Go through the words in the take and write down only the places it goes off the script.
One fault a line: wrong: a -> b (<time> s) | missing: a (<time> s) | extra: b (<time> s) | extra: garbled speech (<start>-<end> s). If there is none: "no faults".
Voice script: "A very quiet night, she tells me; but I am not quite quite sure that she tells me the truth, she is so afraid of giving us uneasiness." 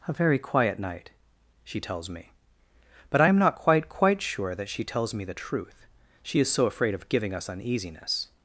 no faults